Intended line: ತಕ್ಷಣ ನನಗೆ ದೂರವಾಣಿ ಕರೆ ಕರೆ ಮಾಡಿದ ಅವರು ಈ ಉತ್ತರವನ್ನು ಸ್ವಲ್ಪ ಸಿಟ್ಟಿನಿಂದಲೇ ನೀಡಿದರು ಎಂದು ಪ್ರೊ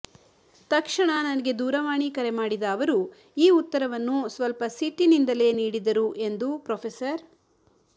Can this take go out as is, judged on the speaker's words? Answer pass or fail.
fail